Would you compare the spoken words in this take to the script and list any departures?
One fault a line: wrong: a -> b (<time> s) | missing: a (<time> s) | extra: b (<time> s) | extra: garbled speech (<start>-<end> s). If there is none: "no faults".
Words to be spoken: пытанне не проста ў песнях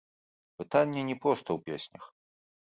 no faults